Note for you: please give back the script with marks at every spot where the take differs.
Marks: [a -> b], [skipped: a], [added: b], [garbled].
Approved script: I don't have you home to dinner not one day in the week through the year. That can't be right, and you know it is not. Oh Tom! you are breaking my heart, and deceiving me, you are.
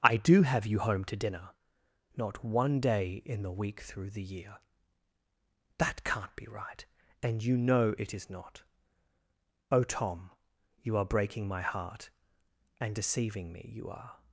I [don't -> do] have you home to dinner not one day in the week through the year. That can't be right, and you know it is not. Oh Tom! you are breaking my heart, and deceiving me, you are.